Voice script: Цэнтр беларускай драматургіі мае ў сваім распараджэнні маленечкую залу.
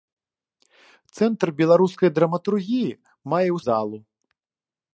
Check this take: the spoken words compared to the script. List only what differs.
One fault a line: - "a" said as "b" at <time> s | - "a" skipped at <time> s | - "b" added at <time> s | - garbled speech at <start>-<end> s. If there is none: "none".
- "сваім распараджэнні маленечкую" skipped at 3.6 s